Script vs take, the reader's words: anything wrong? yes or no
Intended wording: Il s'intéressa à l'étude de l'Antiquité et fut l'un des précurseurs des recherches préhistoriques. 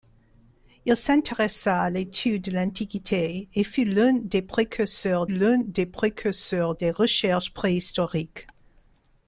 yes